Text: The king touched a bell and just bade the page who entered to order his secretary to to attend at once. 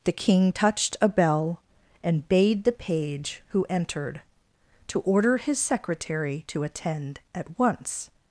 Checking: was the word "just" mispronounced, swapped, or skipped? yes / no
yes